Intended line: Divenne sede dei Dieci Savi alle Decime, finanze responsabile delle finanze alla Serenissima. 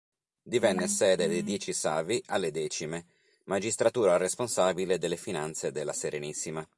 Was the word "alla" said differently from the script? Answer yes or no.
yes